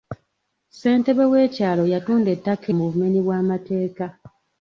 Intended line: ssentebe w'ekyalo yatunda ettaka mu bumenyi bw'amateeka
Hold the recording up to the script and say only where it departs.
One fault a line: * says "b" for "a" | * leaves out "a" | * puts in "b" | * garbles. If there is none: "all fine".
all fine